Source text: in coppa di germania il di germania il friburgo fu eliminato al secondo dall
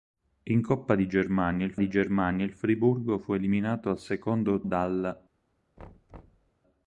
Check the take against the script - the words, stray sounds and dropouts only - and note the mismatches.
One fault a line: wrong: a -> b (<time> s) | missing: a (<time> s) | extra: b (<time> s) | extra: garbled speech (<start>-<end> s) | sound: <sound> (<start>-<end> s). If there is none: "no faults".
sound: thud (5.8-6.5 s)